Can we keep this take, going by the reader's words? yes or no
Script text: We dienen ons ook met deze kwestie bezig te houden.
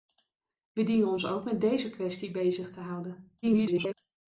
no